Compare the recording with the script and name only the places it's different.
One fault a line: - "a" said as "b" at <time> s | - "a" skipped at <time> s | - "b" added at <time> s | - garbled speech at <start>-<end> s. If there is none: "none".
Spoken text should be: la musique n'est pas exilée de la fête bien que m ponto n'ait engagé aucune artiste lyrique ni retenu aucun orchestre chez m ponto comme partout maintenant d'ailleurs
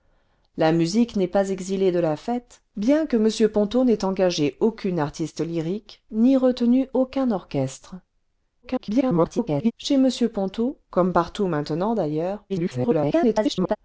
- garbled speech at 8.6-9.7 s
- garbled speech at 12.5-13.8 s